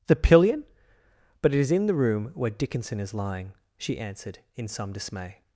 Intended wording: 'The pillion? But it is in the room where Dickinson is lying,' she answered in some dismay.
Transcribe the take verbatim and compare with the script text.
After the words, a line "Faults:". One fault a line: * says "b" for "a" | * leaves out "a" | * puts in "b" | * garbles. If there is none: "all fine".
'The pillion? But it is in the room where Dickinson is lying,' she answered in some dismay.
Faults:
all fine